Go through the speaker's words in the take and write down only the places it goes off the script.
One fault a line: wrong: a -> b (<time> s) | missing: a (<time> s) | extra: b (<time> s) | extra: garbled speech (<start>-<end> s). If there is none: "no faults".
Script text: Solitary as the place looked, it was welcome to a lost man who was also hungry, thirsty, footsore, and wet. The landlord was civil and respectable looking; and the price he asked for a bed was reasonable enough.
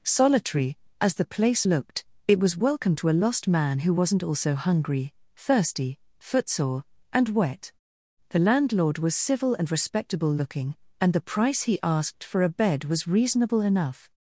wrong: was -> wasn't (3.9 s)